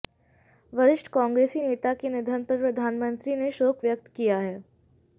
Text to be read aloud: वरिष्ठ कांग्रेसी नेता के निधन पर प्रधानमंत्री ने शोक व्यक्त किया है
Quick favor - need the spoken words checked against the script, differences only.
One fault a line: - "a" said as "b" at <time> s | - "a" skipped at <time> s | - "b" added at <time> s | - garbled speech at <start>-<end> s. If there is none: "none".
none